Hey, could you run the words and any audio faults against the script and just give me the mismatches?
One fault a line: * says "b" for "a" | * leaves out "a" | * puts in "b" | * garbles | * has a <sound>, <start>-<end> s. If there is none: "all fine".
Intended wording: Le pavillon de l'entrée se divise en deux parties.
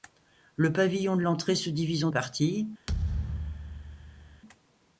* leaves out "deux"
* has a thud, 2.9-4.4 s